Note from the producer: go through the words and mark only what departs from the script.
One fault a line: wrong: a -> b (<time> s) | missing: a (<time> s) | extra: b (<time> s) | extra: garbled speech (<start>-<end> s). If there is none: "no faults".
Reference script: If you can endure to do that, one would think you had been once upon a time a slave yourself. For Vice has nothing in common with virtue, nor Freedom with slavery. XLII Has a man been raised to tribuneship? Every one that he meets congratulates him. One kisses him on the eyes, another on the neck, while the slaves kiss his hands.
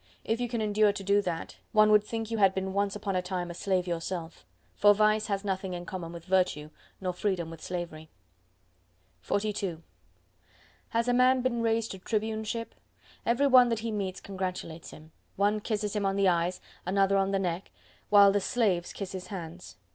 no faults